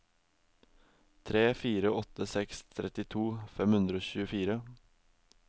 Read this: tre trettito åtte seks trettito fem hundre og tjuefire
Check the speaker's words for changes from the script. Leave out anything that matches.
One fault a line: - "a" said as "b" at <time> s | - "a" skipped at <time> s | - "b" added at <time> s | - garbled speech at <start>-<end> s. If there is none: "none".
- "trettito" said as "fire" at 1.6 s